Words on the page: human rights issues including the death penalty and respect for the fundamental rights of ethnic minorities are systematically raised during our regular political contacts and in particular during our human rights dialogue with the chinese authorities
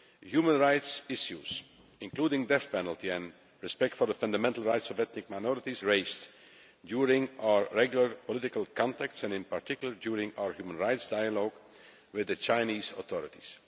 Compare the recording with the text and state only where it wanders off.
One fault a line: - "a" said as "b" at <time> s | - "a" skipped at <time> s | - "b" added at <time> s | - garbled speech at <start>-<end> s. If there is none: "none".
- "are systematically" skipped at 5.8 s